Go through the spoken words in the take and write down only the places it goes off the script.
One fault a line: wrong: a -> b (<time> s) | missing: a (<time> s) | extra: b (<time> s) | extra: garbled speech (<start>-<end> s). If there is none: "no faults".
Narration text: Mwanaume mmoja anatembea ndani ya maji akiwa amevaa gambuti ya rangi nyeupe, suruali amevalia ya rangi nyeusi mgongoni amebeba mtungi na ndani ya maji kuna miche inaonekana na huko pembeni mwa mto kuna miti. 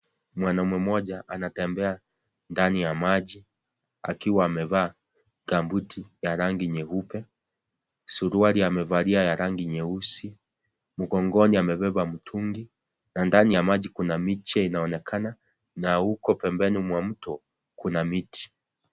no faults